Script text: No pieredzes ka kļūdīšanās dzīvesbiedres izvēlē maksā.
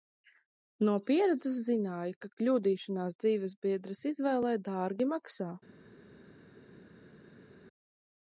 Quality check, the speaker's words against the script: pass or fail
fail